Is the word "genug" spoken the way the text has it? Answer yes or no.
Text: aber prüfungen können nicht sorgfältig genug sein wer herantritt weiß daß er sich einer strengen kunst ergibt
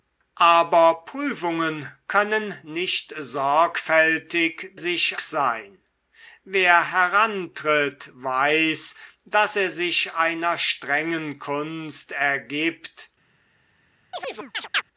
no